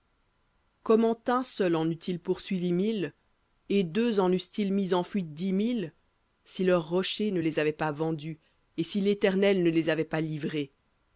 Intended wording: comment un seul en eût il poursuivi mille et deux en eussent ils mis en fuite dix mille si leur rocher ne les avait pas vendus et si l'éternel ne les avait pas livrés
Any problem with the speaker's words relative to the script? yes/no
no